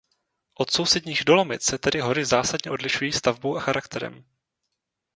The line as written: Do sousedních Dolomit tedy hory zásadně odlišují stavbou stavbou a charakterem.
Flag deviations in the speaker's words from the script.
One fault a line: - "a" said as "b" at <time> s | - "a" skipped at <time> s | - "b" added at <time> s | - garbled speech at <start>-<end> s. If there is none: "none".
- "Do" said as "Od" at 0.5 s
- "se" added at 1.6 s
- "stavbou" skipped at 3.6 s